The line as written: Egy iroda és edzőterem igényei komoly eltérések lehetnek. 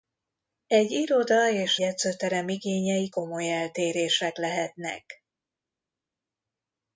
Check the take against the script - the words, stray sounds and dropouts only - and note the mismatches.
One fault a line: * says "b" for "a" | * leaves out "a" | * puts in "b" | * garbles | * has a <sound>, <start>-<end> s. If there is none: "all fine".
all fine